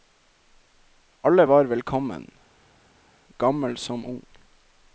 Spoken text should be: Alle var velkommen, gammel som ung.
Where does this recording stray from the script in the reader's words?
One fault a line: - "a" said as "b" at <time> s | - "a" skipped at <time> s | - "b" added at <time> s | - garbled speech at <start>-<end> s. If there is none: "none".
none